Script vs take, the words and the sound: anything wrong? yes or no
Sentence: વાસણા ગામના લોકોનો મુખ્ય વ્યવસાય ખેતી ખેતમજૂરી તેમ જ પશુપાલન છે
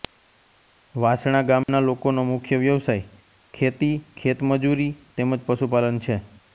yes